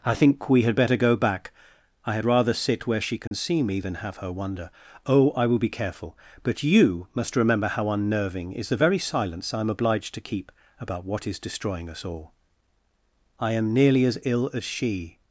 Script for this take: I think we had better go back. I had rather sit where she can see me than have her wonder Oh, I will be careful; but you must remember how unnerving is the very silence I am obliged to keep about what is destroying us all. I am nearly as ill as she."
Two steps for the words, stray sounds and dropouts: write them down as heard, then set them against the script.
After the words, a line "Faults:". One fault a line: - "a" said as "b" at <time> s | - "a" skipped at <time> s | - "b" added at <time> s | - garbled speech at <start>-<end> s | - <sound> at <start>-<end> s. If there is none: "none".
I think we had better go back. I had rather sit where she can see me than have her wonder Oh, I will be careful; but you must remember how unnerving is the very silence I am obliged to keep about what is destroying us all. I am nearly as ill as she."
Faults:
- dropout at 3.3-3.3 s